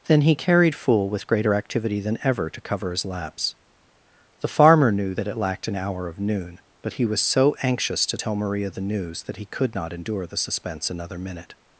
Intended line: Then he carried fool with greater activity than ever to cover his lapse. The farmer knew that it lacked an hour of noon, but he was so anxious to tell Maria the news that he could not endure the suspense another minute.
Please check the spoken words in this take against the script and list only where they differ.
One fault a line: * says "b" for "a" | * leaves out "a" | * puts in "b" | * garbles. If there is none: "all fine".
all fine